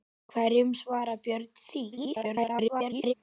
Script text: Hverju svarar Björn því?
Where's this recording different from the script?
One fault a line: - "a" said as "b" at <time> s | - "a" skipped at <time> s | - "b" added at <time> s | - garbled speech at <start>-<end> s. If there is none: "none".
- garbled speech at 1.9-3.1 s